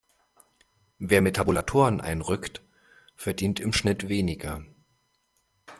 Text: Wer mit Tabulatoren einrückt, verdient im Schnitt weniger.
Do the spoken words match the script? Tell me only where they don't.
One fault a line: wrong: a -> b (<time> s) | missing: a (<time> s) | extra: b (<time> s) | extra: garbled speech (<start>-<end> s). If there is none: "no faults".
no faults